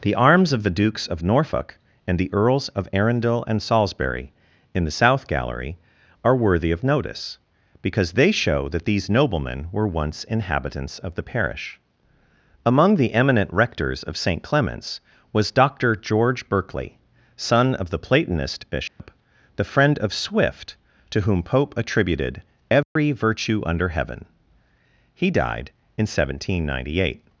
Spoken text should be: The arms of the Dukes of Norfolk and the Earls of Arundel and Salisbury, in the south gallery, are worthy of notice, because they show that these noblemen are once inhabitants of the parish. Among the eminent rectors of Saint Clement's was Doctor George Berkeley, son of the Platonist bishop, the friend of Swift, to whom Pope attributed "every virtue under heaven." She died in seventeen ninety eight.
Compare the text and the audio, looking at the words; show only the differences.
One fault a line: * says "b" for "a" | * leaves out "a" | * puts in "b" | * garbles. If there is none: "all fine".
* says "were" for "are"
* says "He" for "She"